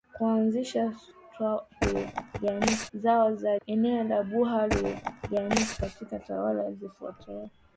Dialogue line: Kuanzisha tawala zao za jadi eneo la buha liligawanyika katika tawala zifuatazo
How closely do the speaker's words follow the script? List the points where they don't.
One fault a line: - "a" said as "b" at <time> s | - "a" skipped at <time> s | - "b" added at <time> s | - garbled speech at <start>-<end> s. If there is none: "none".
- "tawala" said as "liligawanyika" at 1.8 s
- "jadi" skipped at 3.6 s